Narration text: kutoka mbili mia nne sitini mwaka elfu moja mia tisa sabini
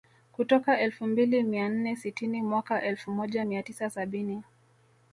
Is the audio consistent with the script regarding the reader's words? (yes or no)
no